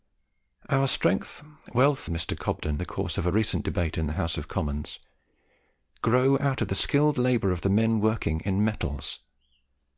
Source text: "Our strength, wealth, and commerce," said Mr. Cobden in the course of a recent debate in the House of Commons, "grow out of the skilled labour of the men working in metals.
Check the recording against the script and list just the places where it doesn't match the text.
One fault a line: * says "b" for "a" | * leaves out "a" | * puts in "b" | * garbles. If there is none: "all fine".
* leaves out "and commerce said"
* leaves out "in"